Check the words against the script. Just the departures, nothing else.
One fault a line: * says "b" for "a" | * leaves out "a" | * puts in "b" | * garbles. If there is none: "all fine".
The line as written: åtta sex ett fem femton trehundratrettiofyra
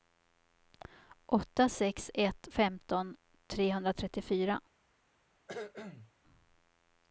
* leaves out "fem"